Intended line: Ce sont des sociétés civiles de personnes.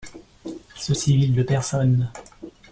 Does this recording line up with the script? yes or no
no